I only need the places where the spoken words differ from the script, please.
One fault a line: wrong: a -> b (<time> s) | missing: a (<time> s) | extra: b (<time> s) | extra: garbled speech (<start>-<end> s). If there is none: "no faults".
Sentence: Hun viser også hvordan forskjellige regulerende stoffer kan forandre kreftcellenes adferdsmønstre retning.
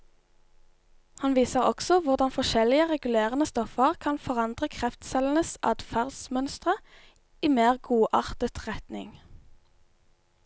wrong: Hun -> Han (1.2 s)
extra: i mer godartet (7.4 s)